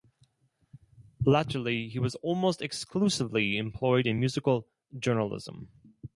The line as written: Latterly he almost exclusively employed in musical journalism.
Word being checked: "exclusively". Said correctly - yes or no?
yes